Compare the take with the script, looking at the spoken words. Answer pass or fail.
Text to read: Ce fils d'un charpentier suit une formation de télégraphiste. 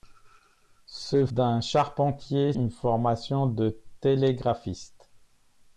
fail